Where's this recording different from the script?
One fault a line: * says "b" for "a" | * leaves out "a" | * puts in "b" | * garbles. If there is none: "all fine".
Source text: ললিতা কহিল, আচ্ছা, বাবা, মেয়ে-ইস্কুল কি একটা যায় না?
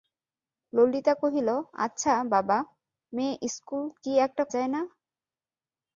all fine